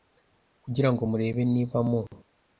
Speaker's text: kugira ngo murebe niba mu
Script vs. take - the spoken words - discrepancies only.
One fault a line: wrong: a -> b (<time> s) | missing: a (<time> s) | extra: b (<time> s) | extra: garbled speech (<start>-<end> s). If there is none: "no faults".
no faults